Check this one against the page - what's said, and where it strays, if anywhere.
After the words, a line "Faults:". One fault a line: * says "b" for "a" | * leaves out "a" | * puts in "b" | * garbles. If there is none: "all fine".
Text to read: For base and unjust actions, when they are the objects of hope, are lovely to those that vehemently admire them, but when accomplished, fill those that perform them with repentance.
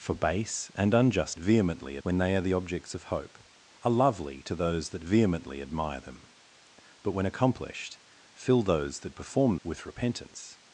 For base and unjust vehemently, when they are the objects of hope, are lovely to those that vehemently admire them, but when accomplished, fill those that perform with repentance.
Faults:
* says "vehemently" for "actions"
* leaves out "them"